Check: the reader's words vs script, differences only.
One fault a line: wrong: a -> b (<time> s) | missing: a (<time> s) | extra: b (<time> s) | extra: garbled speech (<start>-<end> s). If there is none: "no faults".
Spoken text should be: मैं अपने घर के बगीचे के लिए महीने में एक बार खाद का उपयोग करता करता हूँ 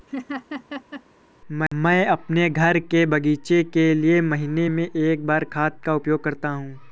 missing: करता (6.5 s)